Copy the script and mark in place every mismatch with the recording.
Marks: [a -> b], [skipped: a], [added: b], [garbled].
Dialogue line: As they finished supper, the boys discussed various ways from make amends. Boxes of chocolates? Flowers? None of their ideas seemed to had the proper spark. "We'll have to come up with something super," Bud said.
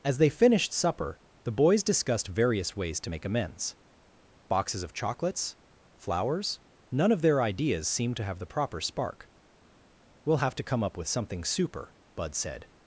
As they finished supper, the boys discussed various ways [from -> to] make amends. Boxes of chocolates? Flowers? None of their ideas seemed to [had -> have] the proper spark. "We'll have to come up with something super," Bud said.